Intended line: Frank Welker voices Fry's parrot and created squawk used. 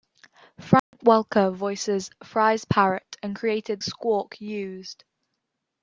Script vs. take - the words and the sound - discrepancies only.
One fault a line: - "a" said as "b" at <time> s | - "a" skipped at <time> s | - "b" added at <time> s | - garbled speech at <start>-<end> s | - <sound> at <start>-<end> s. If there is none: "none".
- dropout at 0.8-0.9 s